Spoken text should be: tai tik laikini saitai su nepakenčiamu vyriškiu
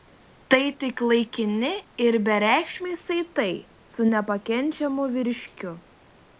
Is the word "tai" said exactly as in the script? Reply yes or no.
yes